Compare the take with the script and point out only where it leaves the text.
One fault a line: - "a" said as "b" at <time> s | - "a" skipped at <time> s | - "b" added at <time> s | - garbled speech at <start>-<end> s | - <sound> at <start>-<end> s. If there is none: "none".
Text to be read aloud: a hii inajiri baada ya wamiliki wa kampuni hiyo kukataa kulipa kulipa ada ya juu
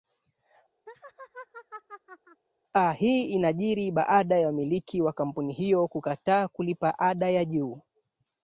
- laugh at 0.9-2.4 s
- "kulipa" skipped at 7.0 s